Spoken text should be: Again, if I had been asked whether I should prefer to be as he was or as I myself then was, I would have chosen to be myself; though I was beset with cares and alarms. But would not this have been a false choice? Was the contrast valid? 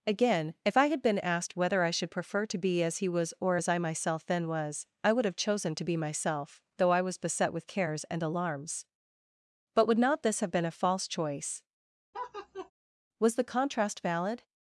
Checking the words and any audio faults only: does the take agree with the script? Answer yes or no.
no